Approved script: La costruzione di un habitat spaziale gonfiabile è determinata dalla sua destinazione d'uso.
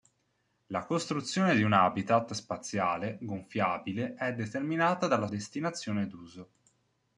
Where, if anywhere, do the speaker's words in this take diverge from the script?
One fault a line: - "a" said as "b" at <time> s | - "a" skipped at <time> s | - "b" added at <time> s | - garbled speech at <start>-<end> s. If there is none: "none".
- "sua" skipped at 5.3 s